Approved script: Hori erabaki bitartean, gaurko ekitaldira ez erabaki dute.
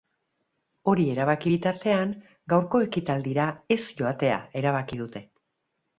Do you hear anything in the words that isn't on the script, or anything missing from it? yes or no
yes